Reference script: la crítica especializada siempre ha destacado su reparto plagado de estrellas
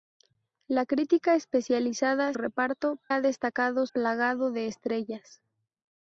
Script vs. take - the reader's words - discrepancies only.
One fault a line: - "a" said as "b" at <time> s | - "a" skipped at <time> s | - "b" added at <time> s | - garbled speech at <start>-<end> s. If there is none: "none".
- "siempre" said as "reparto" at 2.3 s
- "su reparto" skipped at 3.9 s